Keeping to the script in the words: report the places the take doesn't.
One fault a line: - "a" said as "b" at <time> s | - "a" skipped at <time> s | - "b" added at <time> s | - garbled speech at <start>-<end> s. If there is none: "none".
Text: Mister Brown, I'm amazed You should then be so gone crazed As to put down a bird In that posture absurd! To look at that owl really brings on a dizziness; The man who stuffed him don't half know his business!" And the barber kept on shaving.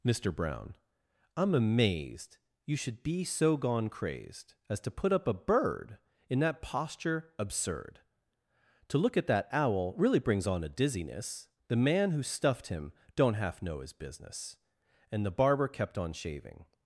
- "then" skipped at 3.0 s
- "down" said as "up" at 5.1 s